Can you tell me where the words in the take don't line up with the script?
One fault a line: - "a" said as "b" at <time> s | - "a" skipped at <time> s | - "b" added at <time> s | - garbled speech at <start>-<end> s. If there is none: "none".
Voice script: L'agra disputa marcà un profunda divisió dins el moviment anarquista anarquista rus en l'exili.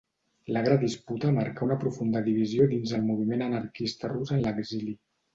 - "un" said as "una" at 1.6 s
- "anarquista" skipped at 4.1 s